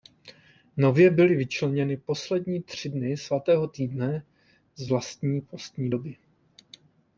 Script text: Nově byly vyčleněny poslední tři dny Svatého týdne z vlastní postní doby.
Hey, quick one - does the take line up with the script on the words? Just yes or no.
yes